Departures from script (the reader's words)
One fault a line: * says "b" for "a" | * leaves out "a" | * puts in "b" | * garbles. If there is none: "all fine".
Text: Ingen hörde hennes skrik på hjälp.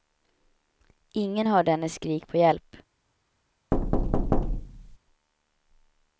all fine